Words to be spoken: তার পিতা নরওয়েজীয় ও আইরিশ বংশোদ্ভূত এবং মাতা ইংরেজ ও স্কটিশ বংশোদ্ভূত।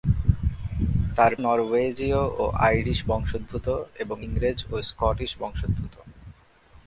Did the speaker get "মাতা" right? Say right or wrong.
wrong